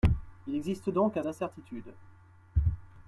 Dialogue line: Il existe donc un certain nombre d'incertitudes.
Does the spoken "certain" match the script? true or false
false